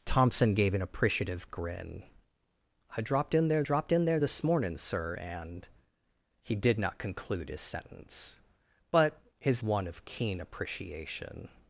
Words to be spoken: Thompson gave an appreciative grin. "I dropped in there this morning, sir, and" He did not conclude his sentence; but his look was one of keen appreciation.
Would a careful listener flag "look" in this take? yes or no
yes